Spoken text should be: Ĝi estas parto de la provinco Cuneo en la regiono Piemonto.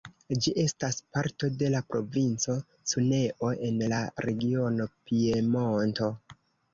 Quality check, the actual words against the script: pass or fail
pass